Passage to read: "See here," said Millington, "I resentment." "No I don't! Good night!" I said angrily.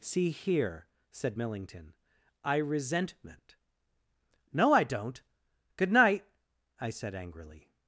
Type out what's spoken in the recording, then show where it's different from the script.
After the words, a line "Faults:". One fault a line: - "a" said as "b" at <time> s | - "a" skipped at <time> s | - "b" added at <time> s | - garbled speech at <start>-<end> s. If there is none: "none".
"See here," said Millington, "I resentment." "No I don't! Good night!" I said angrily.
Faults:
none